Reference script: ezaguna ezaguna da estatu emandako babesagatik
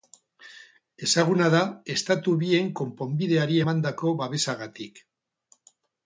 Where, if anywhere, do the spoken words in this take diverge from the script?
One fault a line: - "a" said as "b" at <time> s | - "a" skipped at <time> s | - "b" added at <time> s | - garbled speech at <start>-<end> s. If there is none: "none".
- "ezaguna" skipped at 1.5 s
- "bien konponbideari" added at 2.4 s